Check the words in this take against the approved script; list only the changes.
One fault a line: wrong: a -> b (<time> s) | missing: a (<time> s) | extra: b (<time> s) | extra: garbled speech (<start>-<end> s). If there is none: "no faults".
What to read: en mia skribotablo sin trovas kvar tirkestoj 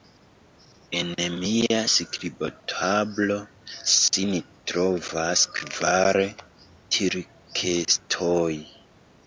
no faults